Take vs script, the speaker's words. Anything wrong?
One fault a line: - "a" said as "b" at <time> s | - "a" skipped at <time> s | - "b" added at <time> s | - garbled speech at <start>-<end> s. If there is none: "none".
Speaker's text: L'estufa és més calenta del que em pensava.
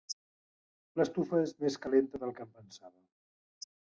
none